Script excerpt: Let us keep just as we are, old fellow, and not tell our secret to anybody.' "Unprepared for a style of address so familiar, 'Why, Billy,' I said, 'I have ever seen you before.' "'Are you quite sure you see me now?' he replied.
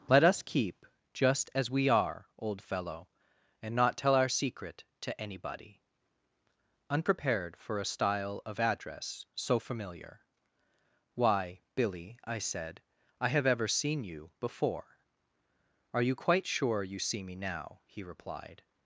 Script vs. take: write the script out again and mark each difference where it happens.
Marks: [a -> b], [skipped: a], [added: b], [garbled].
Let us keep just as we are, old fellow, and not tell our secret to anybody.' "Unprepared for a style of address so familiar, 'Why, Billy,' I said, 'I have ever seen you before.' "'Are you quite sure you see me now?' he replied.